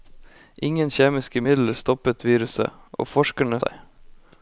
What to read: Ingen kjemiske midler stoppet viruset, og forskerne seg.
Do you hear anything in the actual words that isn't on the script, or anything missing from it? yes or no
no